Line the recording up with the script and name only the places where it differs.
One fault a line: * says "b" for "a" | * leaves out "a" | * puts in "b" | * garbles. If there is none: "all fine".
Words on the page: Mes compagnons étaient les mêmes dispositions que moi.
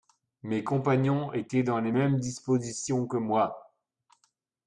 * puts in "dans"